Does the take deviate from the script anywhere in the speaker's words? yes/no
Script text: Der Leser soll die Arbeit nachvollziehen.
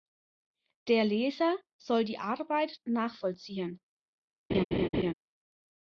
no